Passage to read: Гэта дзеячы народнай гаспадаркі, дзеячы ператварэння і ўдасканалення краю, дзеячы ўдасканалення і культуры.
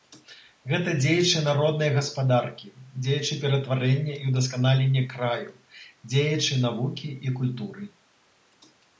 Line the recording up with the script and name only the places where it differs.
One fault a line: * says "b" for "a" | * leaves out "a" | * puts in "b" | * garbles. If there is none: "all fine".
* says "навукі" for "ўдасканалення"